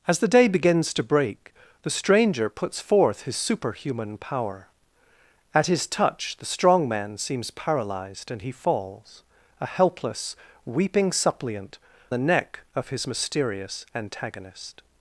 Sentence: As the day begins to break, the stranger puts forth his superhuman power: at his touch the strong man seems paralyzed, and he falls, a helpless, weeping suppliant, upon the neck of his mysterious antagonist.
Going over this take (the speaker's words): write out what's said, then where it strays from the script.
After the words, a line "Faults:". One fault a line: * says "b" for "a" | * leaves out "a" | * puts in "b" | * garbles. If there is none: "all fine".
As the day begins to break, the stranger puts forth his superhuman power: at his touch the strong man seems paralyzed, and he falls, a helpless, weeping suppliant, the neck of his mysterious antagonist.
Faults:
* leaves out "upon"